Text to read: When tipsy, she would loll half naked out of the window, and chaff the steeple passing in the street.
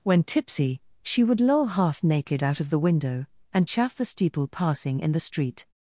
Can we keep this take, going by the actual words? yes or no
yes